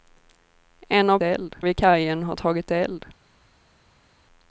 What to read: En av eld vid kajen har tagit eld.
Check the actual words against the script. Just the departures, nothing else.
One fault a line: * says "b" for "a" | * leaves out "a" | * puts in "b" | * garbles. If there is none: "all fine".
all fine